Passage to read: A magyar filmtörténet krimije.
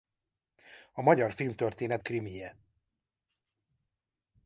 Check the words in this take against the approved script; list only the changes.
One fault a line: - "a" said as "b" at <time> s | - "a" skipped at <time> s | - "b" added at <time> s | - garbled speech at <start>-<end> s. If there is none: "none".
none